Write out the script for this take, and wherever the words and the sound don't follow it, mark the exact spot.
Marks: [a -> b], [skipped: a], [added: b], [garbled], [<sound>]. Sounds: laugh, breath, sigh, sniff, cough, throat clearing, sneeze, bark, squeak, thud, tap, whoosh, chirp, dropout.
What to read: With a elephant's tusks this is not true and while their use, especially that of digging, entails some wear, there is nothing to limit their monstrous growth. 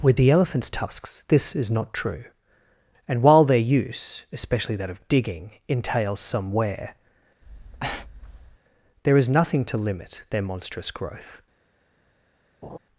With [a -> the] elephant's tusks this is not true and while their use, especially that of digging, entails some wear, [breath] there is nothing to limit their monstrous growth. [laugh]